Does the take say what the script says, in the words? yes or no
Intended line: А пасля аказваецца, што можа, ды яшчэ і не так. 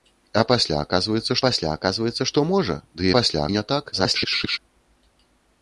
no